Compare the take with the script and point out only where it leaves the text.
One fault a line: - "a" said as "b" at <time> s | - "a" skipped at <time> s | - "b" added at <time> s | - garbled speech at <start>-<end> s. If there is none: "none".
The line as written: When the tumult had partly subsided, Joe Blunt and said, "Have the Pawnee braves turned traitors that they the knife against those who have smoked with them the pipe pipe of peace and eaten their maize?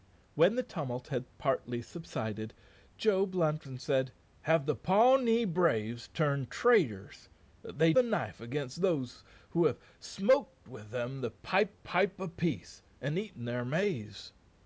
none